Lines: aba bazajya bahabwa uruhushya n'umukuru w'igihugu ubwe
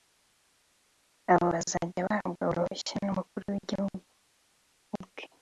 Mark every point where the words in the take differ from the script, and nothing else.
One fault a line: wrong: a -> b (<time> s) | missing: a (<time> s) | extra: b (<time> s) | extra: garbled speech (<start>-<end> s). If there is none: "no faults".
wrong: aba -> abo (1.3 s)